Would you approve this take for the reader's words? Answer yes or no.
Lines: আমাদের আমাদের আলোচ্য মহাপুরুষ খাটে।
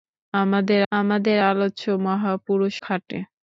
yes